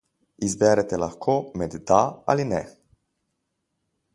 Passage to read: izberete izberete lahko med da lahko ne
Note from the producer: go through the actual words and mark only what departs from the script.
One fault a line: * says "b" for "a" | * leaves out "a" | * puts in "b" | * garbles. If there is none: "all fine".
* leaves out "izberete"
* says "ali" for "lahko"